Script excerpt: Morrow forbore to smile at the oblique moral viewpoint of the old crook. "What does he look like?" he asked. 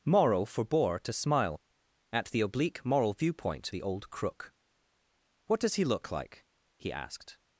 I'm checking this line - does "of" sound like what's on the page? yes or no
no